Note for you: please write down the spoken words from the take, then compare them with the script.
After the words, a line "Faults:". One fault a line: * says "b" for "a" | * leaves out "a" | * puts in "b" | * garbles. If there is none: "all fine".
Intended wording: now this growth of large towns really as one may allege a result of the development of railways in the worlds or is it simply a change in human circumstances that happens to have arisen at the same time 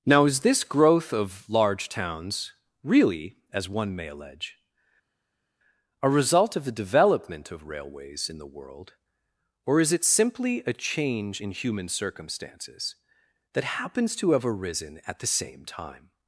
now is this growth of large towns really as one may allege a result of the development of railways in the world or is it simply a change in human circumstances that happens to have arisen at the same time
Faults:
* puts in "is"
* says "world" for "worlds"